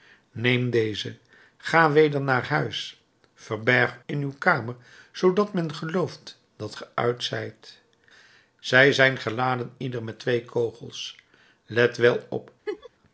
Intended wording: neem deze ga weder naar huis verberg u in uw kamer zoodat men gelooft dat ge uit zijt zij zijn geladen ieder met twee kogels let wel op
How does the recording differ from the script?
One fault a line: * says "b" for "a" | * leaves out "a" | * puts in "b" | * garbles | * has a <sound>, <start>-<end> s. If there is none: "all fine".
* leaves out "u"
* has a laugh, 12.7-12.9 s